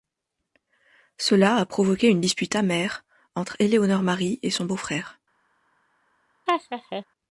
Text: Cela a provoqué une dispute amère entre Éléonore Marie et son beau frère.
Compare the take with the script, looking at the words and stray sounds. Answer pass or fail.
fail